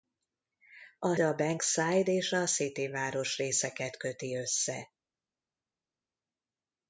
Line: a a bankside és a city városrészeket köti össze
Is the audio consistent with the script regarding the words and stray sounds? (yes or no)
yes